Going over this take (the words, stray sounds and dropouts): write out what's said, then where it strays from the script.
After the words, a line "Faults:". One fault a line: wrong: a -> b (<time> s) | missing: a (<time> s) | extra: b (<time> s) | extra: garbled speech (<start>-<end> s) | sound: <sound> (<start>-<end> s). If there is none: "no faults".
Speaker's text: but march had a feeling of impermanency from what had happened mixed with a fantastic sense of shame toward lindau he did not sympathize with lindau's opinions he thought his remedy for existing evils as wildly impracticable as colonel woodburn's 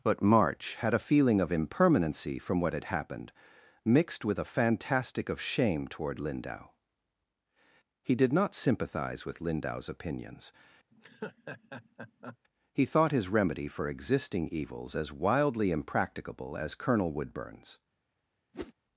but march had a feeling of impermanency from what had happened mixed with a fantastic of shame toward lindau he did not sympathize with lindau's opinions he thought his remedy for existing evils as wildly impracticable as colonel woodburn's
Faults:
missing: sense (5.3 s)
sound: laugh (10.9-12.4 s)
sound: whoosh (18.5-18.7 s)